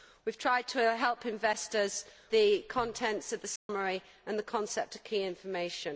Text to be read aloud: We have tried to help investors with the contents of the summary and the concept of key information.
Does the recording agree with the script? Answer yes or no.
no